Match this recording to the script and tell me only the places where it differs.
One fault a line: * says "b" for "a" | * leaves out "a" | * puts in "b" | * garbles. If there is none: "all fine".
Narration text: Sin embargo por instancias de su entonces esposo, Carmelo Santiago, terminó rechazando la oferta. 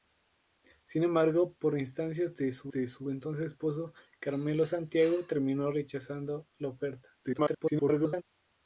* puts in "de su"
* garbles